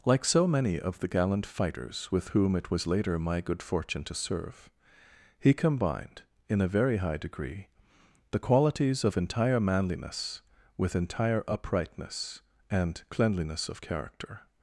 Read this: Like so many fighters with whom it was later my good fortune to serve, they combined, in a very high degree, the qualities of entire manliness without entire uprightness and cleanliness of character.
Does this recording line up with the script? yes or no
no